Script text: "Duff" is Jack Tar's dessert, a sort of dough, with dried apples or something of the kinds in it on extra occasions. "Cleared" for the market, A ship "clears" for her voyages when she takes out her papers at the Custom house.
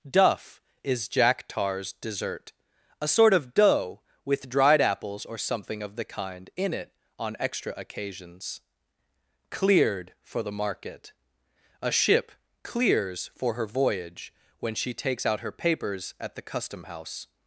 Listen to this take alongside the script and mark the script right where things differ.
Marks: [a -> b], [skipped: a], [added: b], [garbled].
"Duff" is Jack Tar's dessert, a sort of dough, with dried apples or something of the [kinds -> kind] in it on extra occasions. "Cleared" for the market, A ship "clears" for her [voyages -> voyage] when she takes out her papers at the Custom house.